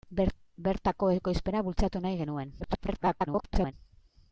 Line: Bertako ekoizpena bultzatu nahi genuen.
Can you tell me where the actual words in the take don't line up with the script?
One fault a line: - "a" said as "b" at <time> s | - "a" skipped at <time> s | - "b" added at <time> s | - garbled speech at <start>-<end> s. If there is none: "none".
- garbled speech at 2.6-3.7 s